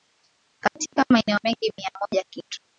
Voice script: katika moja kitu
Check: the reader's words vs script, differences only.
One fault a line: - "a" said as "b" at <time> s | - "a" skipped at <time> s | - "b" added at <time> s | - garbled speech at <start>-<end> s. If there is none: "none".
- "maeneo mengi mia" added at 1.1 s